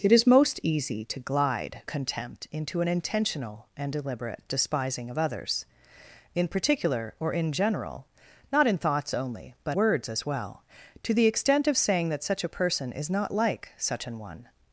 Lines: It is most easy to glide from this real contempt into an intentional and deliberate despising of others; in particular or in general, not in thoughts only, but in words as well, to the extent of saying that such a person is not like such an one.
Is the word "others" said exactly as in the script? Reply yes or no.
yes